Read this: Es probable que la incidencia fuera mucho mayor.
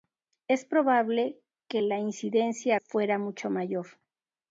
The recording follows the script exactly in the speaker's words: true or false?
true